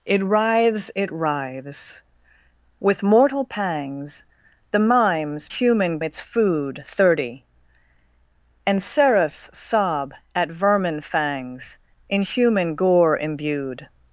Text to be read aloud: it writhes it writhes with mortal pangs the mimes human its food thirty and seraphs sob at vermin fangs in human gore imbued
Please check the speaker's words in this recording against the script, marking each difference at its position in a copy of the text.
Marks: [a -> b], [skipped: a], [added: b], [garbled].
it writhes it writhes with mortal pangs the mimes human its food thirty and seraphs sob at vermin fangs in human gore imbued